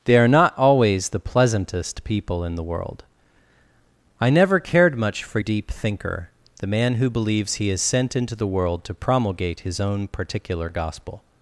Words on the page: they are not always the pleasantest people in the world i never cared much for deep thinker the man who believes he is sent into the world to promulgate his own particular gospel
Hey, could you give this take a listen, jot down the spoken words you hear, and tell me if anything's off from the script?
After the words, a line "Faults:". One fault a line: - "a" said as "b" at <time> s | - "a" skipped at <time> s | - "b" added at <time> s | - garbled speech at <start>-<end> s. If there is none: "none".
they are not always the pleasantest people in the world i never cared much for deep thinker the man who believes he is sent into the world to promulgate his own particular gospel
Faults:
none